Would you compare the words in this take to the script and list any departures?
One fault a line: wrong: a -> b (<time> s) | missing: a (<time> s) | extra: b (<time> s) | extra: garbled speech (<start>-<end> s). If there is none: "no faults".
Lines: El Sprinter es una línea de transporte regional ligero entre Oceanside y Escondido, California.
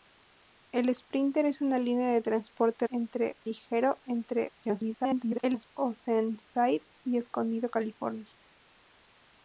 wrong: regional -> entre (2.9 s)
extra: garbled speech (4.6-5.7 s)